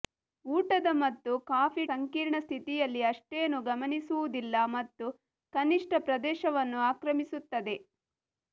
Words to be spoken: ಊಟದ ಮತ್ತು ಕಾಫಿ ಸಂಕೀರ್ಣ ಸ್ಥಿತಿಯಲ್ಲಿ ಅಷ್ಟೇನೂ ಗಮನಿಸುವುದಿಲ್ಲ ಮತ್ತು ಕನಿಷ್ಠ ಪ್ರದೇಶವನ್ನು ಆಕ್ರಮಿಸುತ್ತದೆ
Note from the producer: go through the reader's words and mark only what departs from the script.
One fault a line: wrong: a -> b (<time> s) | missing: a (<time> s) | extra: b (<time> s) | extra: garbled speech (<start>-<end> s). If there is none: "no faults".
no faults